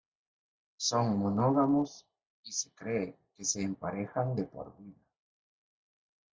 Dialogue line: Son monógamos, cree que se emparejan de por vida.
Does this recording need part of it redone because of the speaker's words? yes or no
yes